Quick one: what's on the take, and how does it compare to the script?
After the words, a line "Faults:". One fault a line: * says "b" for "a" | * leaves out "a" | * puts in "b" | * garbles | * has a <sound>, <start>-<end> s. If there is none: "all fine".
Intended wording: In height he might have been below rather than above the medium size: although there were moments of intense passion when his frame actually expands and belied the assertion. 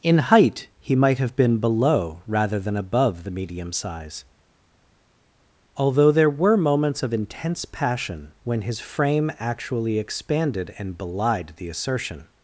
In height he might have been below rather than above the medium size: although there were moments of intense passion when his frame actually expanded and belied the assertion.
Faults:
* says "expanded" for "expands"